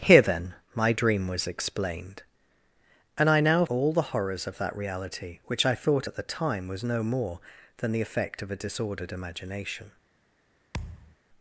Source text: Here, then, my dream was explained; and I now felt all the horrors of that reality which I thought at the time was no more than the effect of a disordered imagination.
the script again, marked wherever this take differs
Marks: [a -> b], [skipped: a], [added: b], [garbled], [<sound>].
Here, then, my dream was explained; and I now [skipped: felt] all the horrors of that reality which I thought at the time was no more than the effect of a disordered imagination. [thud]